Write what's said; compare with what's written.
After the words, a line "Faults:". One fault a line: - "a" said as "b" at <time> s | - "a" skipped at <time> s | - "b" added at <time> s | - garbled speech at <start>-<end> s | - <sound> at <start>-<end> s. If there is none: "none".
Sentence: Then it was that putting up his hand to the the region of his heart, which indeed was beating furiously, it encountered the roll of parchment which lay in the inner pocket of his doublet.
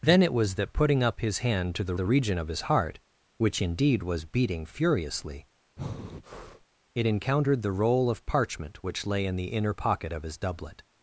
Then it was that putting up his hand to the the region of his heart, which indeed was beating furiously, it encountered the roll of parchment which lay in the inner pocket of his doublet.
Faults:
- breath at 5.8-6.7 s